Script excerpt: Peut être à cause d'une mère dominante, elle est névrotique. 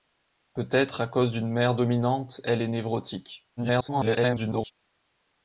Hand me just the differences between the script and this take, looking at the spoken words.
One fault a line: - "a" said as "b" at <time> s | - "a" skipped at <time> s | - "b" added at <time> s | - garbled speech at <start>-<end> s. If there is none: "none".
- garbled speech at 3.6-4.7 s